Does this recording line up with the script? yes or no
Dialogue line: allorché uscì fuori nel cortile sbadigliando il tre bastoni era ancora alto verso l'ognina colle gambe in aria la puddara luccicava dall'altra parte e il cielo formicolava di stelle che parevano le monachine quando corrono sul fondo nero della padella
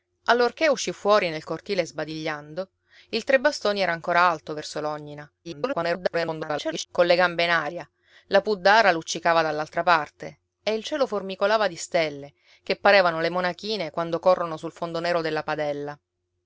no